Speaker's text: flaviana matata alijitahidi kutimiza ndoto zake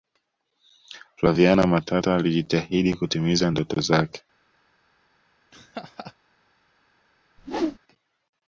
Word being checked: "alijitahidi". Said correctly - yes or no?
yes